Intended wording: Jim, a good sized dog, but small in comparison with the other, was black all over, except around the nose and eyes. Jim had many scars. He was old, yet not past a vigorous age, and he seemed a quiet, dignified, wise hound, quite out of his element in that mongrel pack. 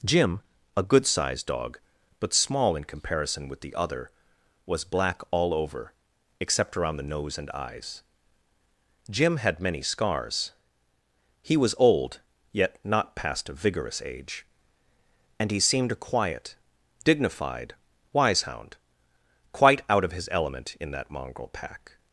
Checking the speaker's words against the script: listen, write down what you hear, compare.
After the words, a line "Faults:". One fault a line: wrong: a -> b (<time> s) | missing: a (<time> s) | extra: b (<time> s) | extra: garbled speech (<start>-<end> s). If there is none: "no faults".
Jim, a good sized dog, but small in comparison with the other, was black all over, except around the nose and eyes. Jim had many scars. He was old, yet not past a vigorous age, and he seemed a quiet, dignified, wise hound, quite out of his element in that mongrel pack.
Faults:
no faults